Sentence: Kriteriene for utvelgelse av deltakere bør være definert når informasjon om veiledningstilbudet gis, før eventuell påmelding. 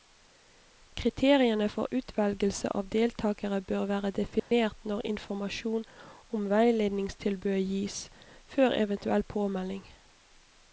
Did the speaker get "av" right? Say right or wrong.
right